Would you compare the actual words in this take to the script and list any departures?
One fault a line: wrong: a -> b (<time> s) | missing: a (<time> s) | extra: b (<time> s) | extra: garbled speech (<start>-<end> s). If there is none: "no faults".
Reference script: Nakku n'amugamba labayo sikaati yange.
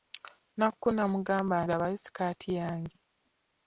no faults